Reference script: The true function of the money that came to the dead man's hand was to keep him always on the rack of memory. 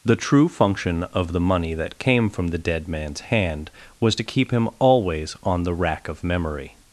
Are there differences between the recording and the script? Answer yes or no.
yes